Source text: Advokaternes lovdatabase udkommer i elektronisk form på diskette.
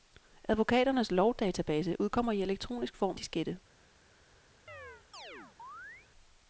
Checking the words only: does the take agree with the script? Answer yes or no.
no